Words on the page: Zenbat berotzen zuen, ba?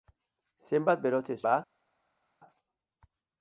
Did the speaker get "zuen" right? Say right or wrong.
wrong